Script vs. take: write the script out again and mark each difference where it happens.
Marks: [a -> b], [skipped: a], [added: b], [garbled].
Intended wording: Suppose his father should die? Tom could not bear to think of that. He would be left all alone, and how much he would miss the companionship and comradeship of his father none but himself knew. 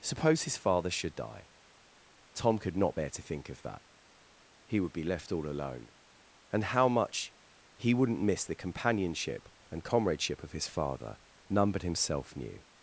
Suppose his father should die? Tom could not bear to think of that. He would be left all alone, and how much he [would -> wouldn't] miss the companionship and comradeship of his father none but himself knew.